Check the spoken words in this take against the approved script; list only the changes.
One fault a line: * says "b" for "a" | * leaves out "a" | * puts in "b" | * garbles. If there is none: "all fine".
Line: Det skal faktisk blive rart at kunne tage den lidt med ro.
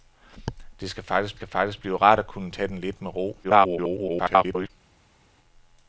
* puts in "skal faktisk"
* garbles